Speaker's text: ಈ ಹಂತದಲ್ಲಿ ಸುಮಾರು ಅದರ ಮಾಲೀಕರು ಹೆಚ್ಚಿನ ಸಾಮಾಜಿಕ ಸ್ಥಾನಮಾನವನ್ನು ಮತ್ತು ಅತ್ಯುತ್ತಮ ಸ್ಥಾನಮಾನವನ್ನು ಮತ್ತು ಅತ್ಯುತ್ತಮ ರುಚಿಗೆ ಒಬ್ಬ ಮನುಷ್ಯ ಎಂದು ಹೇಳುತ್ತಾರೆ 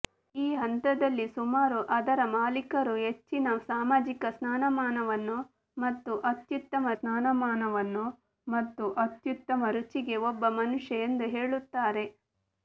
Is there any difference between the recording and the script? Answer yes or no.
no